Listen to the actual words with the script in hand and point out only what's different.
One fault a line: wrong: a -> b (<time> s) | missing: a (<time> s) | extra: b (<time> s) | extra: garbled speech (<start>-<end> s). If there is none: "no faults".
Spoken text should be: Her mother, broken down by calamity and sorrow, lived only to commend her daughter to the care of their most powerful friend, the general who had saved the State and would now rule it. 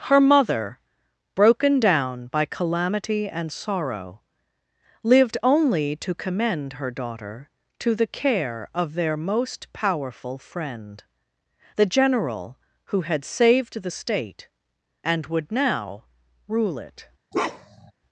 no faults